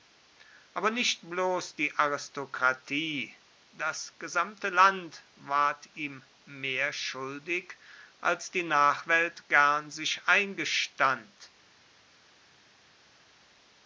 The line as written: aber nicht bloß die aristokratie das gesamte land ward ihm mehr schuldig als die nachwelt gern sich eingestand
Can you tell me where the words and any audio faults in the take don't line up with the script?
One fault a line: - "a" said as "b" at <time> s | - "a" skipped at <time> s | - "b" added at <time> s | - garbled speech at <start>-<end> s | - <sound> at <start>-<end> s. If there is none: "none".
none